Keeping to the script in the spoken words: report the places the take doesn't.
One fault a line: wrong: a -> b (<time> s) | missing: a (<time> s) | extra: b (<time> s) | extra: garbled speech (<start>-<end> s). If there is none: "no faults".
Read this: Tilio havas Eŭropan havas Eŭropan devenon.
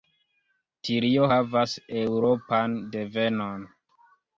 missing: havas Eŭropan (2.8 s)